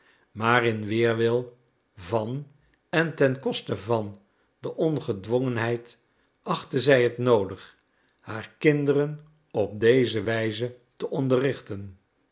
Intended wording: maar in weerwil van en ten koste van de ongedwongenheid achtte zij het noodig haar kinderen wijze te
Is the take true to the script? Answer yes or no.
no